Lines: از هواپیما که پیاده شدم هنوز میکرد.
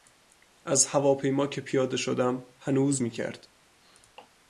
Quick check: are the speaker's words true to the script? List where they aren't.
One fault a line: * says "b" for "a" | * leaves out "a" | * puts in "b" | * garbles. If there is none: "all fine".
all fine